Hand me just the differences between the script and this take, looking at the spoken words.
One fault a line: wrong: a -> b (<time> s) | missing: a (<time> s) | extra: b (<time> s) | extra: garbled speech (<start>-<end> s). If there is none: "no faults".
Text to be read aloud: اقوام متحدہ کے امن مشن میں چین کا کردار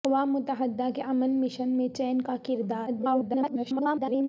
extra: garbled speech (2.9-4.3 s)